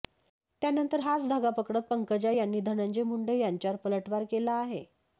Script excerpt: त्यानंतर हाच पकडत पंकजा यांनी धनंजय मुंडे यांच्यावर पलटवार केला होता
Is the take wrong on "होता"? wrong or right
wrong